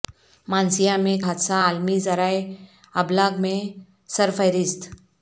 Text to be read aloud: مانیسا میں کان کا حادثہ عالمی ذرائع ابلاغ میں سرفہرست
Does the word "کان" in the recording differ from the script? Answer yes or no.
yes